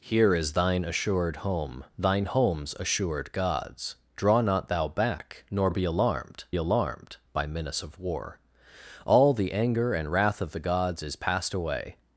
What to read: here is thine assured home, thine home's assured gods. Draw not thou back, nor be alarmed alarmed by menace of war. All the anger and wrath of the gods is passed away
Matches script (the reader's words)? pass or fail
pass